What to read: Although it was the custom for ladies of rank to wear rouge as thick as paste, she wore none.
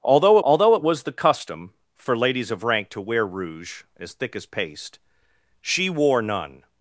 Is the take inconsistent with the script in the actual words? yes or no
yes